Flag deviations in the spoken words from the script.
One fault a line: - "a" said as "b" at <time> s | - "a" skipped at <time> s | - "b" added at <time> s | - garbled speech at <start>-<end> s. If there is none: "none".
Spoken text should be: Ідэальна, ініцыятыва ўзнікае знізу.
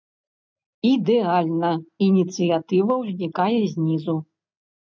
none